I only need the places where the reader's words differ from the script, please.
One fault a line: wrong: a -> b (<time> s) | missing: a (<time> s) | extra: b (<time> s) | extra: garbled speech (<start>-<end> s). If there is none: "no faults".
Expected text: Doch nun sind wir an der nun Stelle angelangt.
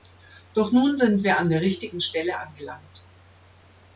wrong: nun -> richtigen (1.6 s)